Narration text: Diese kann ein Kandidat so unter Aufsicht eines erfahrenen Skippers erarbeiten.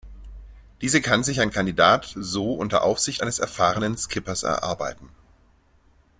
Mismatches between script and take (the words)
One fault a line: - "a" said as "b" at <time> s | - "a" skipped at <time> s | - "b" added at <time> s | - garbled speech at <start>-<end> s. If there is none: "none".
- "sich" added at 1.2 s